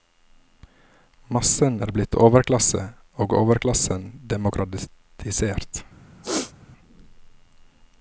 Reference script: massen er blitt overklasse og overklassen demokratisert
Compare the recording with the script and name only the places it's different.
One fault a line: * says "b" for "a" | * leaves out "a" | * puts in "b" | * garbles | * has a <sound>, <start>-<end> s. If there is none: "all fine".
* has a throat clearing, 6.2-6.5 s